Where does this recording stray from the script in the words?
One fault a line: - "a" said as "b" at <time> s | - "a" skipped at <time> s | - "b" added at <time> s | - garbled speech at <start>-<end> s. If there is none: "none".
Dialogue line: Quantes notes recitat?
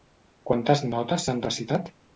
- "s'han" added at 1.3 s